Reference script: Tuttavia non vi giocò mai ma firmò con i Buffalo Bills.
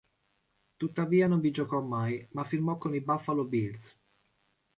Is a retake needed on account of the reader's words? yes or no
no